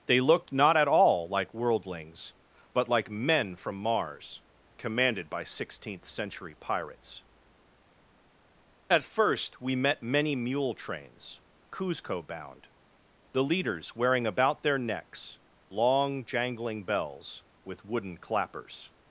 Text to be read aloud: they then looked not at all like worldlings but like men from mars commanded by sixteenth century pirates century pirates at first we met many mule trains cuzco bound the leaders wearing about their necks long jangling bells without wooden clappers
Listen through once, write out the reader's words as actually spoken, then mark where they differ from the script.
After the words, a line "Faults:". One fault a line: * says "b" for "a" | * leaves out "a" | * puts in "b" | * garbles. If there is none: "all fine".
they looked not at all like worldlings but like men from mars commanded by sixteenth century pirates at first we met many mule trains cuzco bound the leaders wearing about their necks long jangling bells with wooden clappers
Faults:
* leaves out "then"
* leaves out "century pirates"
* says "with" for "without"